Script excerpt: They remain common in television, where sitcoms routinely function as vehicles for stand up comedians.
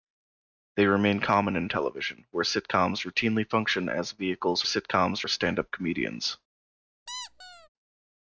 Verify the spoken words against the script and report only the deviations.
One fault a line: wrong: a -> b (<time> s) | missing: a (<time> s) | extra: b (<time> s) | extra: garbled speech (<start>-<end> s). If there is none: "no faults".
wrong: for -> sitcoms (4.6 s)